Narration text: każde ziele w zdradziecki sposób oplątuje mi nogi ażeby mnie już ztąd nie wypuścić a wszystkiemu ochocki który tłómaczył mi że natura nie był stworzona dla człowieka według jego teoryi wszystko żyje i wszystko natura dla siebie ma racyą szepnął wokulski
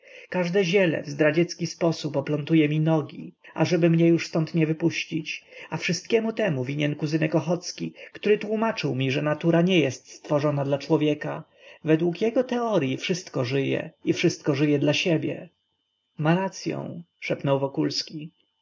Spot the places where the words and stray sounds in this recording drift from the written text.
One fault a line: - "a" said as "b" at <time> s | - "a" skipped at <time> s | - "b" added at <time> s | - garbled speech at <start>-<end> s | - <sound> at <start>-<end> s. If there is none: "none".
- "temu winien kuzynek" added at 6.3 s
- "był" said as "jest" at 9.8 s
- "natura" said as "żyje" at 14.5 s